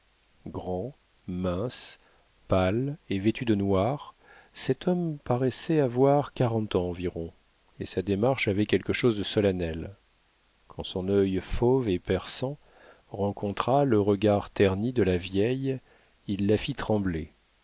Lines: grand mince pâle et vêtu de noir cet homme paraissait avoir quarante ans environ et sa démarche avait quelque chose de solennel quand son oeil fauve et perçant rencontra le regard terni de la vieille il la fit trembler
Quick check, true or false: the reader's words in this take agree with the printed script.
true